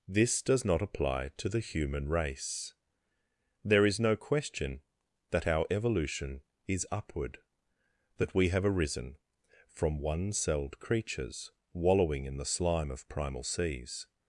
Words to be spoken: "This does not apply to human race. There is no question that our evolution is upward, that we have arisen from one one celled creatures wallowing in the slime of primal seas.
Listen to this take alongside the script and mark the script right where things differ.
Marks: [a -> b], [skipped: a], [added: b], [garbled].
"This does not apply to [added: the] human race. There is no question that our evolution is upward, that we have arisen from one [skipped: one] celled creatures wallowing in the slime of primal seas.